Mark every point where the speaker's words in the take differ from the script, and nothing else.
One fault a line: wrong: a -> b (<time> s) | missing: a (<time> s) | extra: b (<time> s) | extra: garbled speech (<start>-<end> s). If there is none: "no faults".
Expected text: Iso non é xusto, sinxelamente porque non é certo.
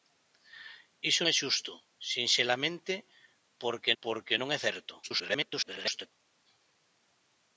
missing: non (1.2 s)
extra: porque (4.0 s)
extra: garbled speech (5.0-6.1 s)